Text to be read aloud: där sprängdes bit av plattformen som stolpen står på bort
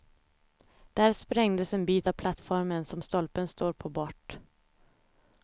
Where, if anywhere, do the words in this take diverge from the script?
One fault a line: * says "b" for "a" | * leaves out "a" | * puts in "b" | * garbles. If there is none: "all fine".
* puts in "en"